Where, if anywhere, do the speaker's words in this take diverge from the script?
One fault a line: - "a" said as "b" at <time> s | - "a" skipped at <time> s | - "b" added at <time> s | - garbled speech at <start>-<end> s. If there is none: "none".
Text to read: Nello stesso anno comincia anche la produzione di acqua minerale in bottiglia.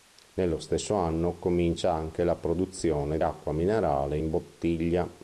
- "di" skipped at 3.2 s